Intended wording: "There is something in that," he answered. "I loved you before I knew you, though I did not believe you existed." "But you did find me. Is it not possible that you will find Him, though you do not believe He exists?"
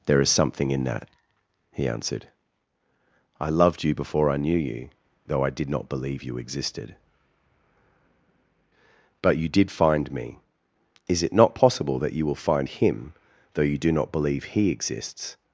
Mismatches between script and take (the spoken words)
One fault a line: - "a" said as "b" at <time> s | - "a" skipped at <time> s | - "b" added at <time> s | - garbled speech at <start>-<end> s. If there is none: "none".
none